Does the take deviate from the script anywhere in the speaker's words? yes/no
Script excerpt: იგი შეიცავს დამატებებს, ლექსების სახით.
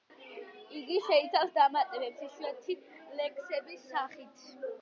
yes